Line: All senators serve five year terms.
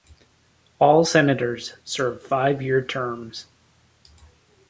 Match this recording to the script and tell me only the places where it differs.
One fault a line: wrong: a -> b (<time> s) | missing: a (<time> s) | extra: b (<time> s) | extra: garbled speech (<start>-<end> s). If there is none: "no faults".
no faults